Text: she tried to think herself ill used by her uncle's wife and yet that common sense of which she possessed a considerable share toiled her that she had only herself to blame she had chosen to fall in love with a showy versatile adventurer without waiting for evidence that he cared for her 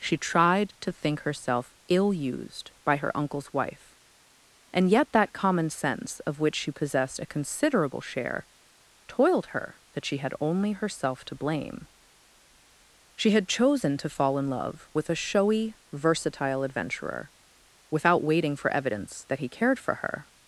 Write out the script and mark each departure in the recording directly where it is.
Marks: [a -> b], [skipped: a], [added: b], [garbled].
she tried to think herself ill used by her uncle's wife and yet that common sense of which she possessed a considerable share toiled her that she had only herself to blame she had chosen to fall in love with a showy versatile adventurer without waiting for evidence that he cared for her